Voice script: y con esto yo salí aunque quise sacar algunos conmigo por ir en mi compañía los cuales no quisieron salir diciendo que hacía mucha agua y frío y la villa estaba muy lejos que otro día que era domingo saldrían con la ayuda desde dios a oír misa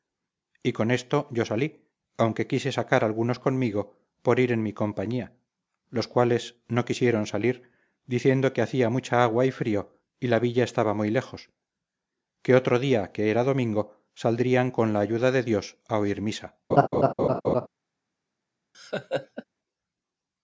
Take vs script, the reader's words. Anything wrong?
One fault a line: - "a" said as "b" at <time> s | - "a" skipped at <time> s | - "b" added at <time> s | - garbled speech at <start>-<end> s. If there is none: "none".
- "desde" said as "de" at 15.3 s